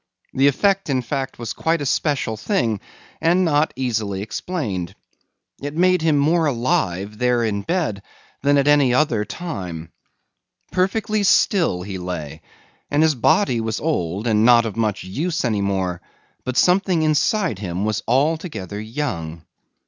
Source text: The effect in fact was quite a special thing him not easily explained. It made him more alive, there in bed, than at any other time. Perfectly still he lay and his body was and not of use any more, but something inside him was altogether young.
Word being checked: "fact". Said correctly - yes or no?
yes